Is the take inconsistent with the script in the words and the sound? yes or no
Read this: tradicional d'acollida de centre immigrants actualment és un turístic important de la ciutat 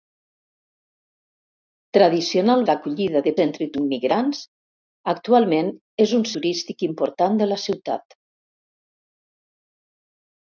no